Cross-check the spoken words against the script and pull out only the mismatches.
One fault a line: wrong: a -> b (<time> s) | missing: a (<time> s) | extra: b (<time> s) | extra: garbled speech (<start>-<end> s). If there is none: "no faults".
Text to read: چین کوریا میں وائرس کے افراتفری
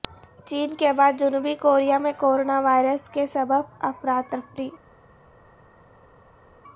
extra: کے بعد جنوبی (0.7 s)
extra: کورونا (2.2 s)
extra: سبب (3.3 s)